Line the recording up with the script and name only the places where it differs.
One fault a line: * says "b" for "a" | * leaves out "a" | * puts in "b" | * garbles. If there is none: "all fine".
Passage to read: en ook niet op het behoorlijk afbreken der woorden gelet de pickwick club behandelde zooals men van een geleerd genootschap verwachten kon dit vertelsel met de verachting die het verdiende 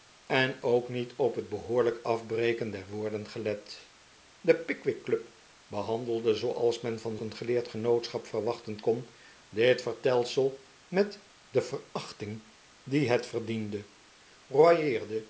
all fine